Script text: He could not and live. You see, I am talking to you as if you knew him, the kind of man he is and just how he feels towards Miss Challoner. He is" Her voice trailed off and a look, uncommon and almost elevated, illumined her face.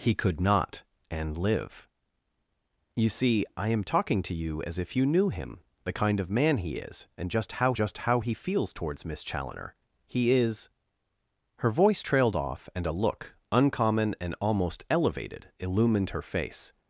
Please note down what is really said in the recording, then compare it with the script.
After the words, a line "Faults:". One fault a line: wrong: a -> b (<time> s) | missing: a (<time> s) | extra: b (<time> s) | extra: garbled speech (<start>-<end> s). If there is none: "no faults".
He could not and live. You see, I am talking to you as if you knew him, the kind of man he is and just how just how he feels towards Miss Challoner. He is" Her voice trailed off and a look, uncommon and almost elevated, illumined her face.
Faults:
extra: just how (7.7 s)